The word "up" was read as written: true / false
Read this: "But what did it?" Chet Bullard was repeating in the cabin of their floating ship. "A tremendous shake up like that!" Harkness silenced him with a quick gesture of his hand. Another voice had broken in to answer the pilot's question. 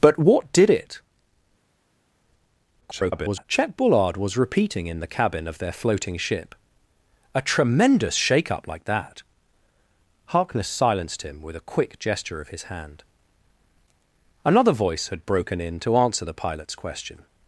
true